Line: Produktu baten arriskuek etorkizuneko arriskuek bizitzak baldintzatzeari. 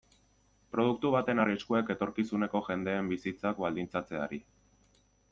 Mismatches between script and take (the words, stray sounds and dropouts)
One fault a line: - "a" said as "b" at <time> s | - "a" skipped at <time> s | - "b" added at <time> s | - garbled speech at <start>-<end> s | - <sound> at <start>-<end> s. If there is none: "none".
- "arriskuek" said as "jendeen" at 2.7 s